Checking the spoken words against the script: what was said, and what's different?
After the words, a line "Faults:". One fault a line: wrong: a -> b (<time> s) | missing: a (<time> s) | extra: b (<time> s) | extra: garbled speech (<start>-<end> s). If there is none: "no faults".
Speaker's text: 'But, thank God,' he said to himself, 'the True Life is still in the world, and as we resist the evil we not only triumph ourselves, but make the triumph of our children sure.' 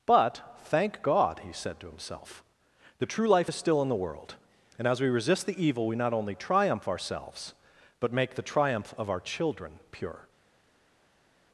'But, thank God,' he said to himself, 'the True Life is still in the world, and as we resist the evil we not only triumph ourselves, but make the triumph of our children pure.'
Faults:
wrong: sure -> pure (9.9 s)